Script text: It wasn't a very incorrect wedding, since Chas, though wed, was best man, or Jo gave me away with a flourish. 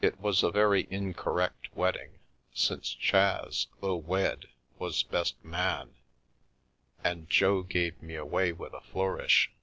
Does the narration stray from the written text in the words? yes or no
yes